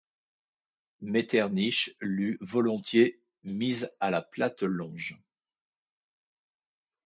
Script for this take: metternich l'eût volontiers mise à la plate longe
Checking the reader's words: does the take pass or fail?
pass